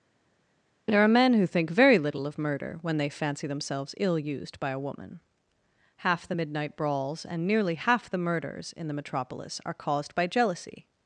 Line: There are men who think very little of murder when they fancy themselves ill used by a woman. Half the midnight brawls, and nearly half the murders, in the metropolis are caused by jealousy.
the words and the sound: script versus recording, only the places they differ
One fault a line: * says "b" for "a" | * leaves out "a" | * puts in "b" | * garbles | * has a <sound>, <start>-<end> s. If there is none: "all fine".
all fine